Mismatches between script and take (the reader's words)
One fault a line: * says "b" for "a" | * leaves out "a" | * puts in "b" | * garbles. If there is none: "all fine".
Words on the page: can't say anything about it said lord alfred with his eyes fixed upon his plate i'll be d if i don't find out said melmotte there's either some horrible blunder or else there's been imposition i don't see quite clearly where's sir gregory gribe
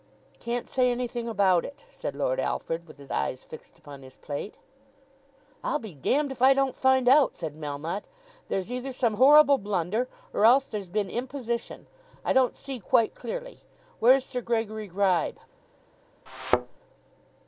all fine